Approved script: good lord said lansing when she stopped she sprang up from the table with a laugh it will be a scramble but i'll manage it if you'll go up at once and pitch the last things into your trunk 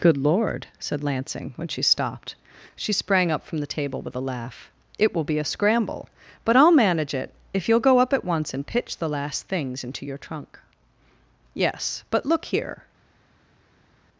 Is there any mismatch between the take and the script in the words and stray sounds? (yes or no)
yes